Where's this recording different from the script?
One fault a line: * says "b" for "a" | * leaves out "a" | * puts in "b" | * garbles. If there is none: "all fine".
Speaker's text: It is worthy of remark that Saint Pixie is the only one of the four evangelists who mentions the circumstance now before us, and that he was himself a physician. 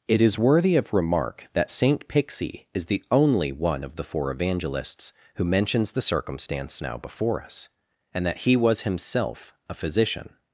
all fine